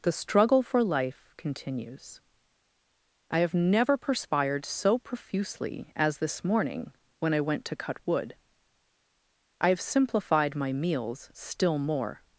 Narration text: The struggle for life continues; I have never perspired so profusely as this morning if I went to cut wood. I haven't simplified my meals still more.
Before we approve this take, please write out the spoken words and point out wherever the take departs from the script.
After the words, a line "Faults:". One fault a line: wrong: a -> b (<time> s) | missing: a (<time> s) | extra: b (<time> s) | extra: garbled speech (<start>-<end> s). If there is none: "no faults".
The struggle for life continues; I have never perspired so profusely as this morning when I went to cut wood. I have simplified my meals still more.
Faults:
wrong: if -> when (7.2 s)
wrong: haven't -> have (9.7 s)